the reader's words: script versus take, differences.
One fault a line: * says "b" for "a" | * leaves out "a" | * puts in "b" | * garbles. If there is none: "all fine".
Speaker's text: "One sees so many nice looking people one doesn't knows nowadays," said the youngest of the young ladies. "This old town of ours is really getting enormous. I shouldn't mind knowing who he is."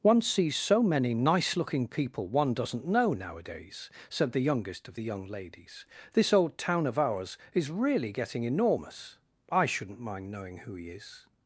* says "know" for "knows"